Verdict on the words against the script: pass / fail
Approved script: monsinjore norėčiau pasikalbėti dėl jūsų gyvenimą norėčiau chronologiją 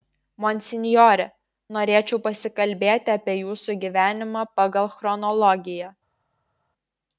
fail